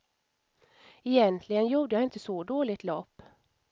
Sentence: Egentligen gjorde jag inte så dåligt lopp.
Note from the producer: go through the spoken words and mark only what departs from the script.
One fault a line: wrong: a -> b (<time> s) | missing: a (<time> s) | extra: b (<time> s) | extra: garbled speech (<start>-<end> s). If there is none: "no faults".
no faults